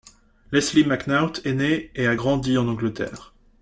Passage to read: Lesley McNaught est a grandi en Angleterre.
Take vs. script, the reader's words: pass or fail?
fail